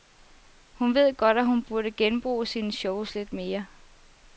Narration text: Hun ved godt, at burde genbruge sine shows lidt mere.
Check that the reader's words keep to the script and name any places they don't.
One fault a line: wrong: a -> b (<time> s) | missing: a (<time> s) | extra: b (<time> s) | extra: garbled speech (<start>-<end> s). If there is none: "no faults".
extra: hun (1.4 s)